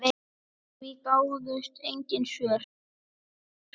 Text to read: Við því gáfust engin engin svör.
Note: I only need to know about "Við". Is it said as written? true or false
true